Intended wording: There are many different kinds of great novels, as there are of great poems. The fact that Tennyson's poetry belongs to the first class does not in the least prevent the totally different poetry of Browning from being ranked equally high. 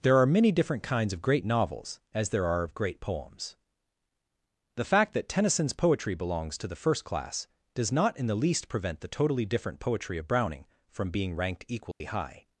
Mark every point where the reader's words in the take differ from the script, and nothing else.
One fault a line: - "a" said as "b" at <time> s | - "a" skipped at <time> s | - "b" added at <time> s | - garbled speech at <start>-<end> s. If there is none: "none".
none